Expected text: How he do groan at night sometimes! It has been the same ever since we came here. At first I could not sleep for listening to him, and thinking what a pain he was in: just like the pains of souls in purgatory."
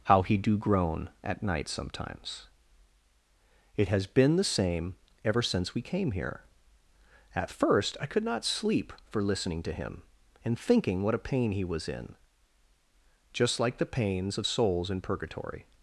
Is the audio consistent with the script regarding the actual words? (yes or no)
yes